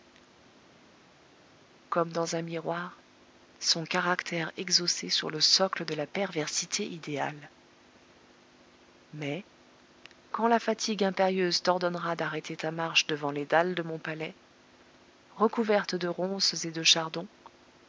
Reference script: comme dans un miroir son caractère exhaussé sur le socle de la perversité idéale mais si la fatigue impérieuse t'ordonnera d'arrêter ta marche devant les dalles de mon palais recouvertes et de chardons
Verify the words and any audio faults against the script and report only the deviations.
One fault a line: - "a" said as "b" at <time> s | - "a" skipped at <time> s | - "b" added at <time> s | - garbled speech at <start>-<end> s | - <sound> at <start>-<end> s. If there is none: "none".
- "si" said as "quand" at 10.3 s
- "de ronces" added at 15.9 s